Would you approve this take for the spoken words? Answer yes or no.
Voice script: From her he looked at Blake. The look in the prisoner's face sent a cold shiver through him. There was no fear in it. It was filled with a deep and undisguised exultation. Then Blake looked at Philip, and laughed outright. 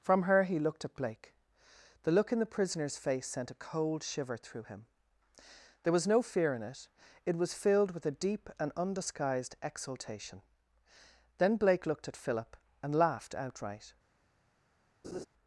yes